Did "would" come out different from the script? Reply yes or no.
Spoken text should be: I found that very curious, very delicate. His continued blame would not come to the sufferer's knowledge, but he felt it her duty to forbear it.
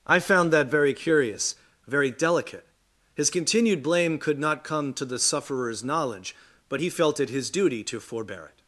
yes